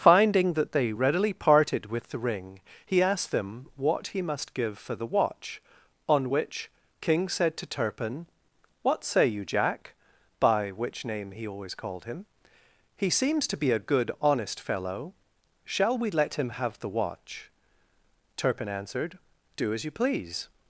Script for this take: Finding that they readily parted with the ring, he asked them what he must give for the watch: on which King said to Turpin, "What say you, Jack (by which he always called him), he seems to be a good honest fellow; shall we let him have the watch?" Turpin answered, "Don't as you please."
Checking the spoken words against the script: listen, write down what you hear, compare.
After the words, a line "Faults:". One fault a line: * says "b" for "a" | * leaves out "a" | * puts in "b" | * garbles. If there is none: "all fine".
Finding that they readily parted with the ring, he asked them what he must give for the watch: on which King said to Turpin, "What say you, Jack (by which name he always called him), he seems to be a good honest fellow; shall we let him have the watch?" Turpin answered, "Do as you please."
Faults:
* puts in "name"
* says "Do" for "Don't"